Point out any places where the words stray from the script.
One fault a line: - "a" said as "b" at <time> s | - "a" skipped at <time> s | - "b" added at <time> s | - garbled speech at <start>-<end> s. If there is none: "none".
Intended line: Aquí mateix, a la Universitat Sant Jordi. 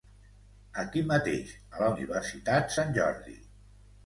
none